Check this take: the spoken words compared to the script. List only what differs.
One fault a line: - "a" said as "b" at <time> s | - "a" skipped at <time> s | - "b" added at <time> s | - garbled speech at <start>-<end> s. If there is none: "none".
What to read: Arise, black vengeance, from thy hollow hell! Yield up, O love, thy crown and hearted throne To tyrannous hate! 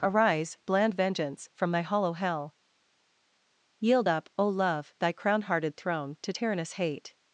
- "black" said as "bland" at 0.7 s
- "and" skipped at 5.4 s